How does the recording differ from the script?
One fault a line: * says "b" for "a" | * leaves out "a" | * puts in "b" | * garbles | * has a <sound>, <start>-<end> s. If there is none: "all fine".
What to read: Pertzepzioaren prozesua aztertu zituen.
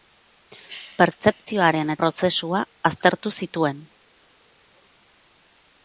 all fine